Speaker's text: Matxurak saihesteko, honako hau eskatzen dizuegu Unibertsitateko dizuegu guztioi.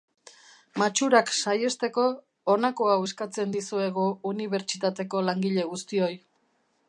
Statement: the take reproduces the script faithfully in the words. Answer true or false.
false